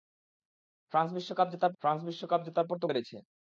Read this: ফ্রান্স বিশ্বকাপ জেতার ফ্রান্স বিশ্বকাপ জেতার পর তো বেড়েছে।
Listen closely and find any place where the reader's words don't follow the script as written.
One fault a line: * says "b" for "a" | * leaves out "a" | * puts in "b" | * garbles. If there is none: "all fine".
all fine